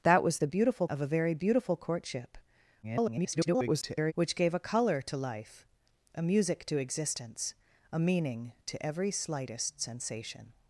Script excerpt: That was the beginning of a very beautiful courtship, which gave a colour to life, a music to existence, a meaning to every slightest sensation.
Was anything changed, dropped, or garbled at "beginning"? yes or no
yes